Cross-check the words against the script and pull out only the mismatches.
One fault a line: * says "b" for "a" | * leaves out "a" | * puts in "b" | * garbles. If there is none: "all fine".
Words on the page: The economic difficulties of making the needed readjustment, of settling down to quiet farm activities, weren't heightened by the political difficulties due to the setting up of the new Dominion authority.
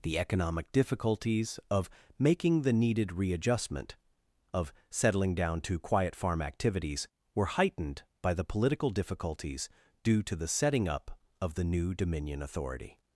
* says "were" for "weren't"